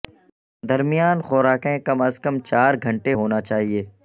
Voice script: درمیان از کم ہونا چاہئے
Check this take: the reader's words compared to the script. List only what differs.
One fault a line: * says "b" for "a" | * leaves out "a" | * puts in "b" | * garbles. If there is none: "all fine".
* puts in "خوراکیں کم"
* puts in "چار گھنٹے"